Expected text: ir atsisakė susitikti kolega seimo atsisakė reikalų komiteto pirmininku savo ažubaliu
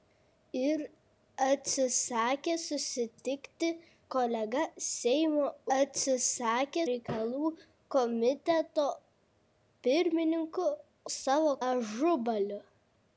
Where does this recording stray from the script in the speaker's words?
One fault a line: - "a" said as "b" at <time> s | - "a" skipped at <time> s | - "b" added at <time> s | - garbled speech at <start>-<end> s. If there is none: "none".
none